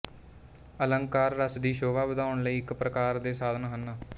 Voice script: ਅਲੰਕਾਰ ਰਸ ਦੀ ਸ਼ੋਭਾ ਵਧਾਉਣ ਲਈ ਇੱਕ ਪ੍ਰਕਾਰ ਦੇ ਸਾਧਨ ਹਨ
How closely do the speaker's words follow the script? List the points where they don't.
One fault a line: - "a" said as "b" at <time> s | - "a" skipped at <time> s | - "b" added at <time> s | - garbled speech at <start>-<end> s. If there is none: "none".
none